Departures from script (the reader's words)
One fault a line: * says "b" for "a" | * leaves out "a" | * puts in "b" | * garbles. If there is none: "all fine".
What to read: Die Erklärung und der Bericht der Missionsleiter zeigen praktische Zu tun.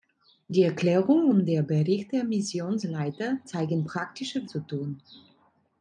all fine